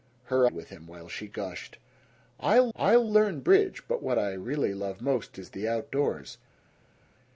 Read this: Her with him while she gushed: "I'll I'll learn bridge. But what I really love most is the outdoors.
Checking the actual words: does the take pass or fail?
pass